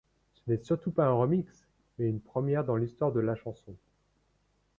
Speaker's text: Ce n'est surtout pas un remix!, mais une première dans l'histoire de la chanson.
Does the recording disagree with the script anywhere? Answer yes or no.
no